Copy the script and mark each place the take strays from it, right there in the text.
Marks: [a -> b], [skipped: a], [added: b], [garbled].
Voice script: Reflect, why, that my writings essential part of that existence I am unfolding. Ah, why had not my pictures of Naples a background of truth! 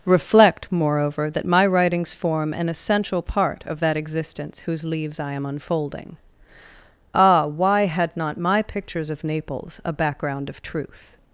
Reflect, [why, -> moreover] that my writings [added: form an] essential part of that existence [added: whose leaves] I am unfolding. Ah, why had not my pictures of Naples a background of truth!